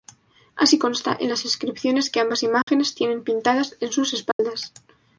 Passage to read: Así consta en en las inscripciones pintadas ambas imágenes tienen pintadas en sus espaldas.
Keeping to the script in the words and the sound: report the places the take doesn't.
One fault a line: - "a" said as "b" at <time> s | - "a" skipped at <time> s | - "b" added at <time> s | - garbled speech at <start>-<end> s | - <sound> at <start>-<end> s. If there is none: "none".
- "en" skipped at 1.3 s
- "pintadas" said as "que" at 2.1 s
- dropout at 2.6-2.7 s
- dropout at 4.3-4.4 s